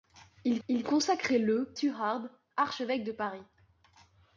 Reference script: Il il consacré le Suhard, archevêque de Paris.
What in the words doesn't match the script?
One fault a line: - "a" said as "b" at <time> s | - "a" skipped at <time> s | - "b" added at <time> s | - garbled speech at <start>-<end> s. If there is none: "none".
none